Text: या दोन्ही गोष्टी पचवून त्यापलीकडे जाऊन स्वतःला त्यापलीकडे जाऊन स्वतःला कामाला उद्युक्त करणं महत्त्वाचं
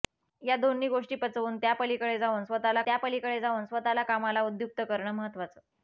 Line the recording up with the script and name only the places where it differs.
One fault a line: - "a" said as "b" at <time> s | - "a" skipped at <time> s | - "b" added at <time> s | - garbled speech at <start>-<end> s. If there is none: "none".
none